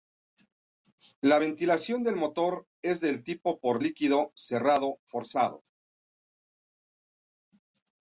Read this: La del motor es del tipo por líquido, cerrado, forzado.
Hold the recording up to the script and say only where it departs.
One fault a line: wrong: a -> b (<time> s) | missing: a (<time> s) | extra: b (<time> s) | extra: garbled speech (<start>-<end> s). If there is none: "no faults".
extra: ventilación (1.4 s)